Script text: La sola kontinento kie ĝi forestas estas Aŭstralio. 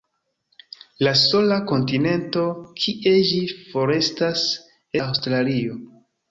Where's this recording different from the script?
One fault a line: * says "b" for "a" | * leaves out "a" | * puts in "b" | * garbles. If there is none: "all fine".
* leaves out "estas"